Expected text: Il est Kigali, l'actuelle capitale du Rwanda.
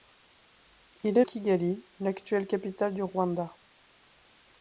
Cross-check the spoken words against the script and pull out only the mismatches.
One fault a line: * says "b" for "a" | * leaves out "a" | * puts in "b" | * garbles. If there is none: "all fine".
all fine